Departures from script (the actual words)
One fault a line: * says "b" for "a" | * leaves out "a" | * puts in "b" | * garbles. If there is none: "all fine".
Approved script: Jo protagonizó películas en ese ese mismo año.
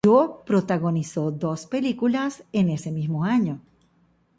* puts in "dos"
* leaves out "ese"